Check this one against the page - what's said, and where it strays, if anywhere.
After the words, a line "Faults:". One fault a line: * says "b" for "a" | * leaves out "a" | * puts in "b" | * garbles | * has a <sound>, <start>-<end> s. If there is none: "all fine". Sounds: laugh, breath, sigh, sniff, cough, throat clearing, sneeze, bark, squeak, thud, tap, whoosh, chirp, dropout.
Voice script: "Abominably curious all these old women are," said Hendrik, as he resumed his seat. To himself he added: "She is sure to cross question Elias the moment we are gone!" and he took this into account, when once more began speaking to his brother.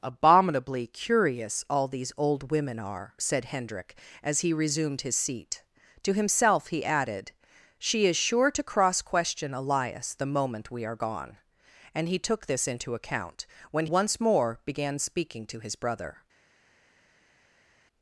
"Abominably curious all these old women are," said Hendrik, as he resumed his seat. To himself he added: "She is sure to cross question Elias the moment we are gone!" and he took this into account, when once more began speaking to his brother.
Faults:
all fine